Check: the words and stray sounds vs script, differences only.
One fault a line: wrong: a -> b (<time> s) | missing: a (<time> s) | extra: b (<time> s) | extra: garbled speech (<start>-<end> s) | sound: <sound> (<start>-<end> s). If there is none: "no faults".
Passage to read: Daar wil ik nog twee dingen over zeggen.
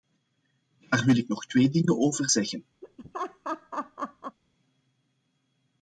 sound: laugh (2.8-4.4 s)